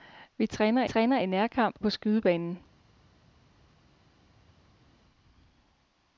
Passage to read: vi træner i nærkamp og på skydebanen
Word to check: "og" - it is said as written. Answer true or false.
false